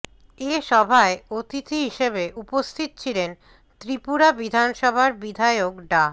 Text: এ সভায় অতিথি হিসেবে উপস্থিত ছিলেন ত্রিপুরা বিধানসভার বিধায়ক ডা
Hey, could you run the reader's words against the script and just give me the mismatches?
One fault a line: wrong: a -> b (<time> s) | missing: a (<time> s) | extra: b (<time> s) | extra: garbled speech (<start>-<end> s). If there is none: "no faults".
no faults